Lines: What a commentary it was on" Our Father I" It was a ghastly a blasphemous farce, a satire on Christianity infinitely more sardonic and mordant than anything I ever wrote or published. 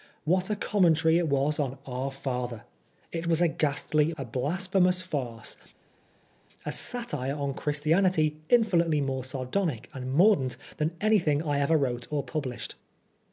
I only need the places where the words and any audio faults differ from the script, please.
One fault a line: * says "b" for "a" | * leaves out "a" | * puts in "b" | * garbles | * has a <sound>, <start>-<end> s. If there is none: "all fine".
all fine